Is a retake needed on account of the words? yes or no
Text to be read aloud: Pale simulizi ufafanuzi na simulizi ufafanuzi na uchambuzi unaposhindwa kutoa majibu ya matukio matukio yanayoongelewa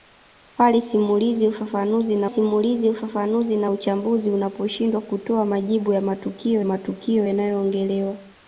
no